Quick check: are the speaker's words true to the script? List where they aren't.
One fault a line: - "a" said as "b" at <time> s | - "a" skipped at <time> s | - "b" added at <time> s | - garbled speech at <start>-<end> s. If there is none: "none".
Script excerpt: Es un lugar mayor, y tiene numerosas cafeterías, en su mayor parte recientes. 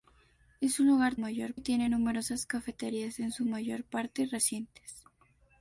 none